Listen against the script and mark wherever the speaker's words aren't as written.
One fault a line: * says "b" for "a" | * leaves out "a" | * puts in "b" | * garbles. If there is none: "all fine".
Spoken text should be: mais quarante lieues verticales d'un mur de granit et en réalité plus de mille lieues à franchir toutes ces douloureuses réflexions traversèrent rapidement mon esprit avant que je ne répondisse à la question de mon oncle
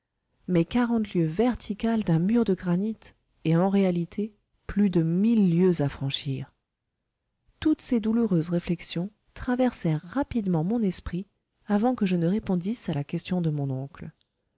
all fine